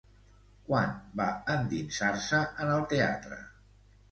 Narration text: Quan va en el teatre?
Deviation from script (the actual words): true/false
true